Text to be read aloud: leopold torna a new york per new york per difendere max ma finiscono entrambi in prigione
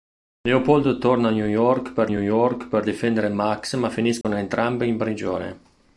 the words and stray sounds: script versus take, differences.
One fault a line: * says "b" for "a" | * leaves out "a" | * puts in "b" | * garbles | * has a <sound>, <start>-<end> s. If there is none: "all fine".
* has a dropout, 4.2-4.2 s